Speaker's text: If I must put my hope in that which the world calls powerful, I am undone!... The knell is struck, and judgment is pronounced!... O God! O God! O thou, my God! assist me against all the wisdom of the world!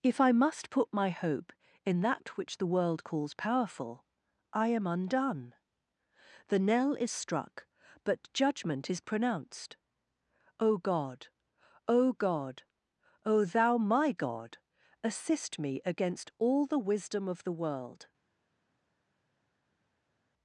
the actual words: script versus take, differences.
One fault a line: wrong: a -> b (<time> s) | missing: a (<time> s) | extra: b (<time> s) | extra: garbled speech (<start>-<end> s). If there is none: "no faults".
wrong: and -> but (8.0 s)